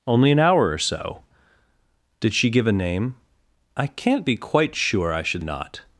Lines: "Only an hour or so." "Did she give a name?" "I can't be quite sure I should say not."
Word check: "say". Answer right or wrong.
wrong